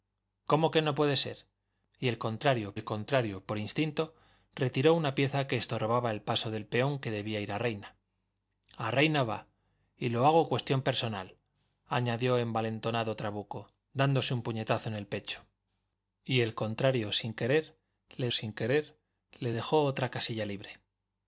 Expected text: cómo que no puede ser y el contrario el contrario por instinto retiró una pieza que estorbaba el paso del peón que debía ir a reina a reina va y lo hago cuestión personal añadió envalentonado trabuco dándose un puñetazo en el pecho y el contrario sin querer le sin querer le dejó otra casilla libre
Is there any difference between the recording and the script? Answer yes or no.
no